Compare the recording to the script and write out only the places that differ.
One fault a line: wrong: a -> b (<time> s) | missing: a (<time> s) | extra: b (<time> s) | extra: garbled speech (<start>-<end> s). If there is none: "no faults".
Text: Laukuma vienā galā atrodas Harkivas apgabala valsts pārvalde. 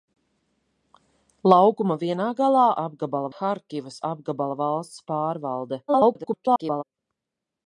wrong: atrodas -> apgabala (2.8 s)
extra: garbled speech (5.9-6.8 s)